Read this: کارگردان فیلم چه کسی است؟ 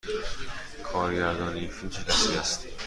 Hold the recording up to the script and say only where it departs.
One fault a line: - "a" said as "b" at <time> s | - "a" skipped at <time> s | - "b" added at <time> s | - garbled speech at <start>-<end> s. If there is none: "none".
- "این" added at 1.6 s